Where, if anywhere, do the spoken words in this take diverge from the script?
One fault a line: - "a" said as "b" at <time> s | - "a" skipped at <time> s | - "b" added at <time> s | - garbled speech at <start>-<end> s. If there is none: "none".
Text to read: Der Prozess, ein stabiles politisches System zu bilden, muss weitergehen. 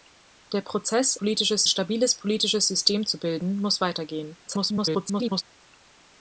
- "ein" said as "politisches" at 1.1 s
- garbled speech at 4.5-5.4 s